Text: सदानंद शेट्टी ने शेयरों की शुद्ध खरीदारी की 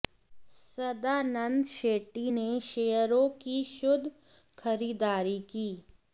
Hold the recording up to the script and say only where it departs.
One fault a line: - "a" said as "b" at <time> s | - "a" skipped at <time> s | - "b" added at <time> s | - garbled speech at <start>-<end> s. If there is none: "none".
none